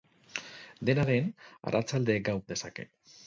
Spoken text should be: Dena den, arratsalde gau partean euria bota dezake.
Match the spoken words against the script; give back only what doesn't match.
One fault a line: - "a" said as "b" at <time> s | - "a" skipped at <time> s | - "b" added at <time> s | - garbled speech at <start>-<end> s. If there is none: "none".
- "partean euria bota" skipped at 2.4 s